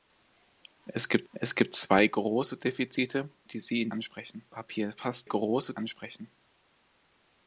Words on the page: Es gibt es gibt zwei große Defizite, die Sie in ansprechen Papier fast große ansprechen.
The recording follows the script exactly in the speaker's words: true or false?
true